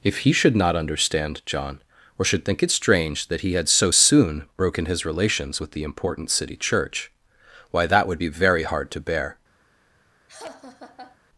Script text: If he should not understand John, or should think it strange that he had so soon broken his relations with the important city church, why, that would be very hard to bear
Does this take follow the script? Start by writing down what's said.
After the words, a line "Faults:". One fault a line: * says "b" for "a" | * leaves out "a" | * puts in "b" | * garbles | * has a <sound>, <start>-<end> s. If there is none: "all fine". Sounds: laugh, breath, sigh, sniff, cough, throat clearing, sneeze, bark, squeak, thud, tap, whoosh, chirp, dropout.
If he should not understand John, or should think it strange that he had so soon broken his relations with the important city church, why, that would be very hard to bear
Faults:
* has a laugh, 10.3-11.2 s